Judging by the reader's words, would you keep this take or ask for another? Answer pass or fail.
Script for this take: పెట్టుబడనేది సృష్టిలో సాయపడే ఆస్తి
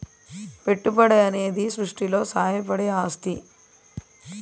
pass